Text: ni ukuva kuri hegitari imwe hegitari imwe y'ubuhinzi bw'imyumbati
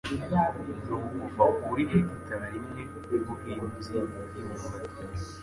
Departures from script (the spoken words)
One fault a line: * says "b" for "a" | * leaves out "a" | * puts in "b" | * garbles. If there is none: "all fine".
* leaves out "hegitari imwe"